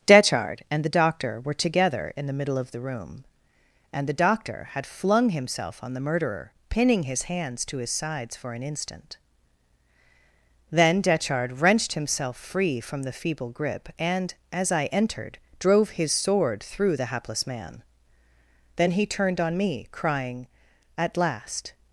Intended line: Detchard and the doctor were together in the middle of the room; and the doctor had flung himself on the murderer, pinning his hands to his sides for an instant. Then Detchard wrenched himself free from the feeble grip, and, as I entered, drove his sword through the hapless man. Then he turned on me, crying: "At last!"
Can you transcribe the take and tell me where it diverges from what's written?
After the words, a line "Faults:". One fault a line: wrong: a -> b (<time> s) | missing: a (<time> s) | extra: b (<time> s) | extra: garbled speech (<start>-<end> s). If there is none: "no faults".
Detchard and the doctor were together in the middle of the room; and the doctor had flung himself on the murderer, pinning his hands to his sides for an instant. Then Detchard wrenched himself free from the feeble grip, and, as I entered, drove his sword through the hapless man. Then he turned on me, crying: "At last!"
Faults:
no faults